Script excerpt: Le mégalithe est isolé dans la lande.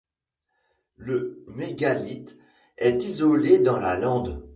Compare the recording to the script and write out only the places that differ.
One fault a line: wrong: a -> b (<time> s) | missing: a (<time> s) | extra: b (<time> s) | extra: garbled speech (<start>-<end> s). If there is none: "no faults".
no faults